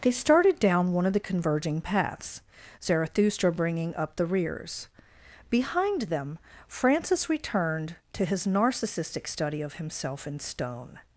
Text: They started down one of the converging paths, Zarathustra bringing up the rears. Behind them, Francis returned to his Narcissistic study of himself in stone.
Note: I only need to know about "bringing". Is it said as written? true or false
true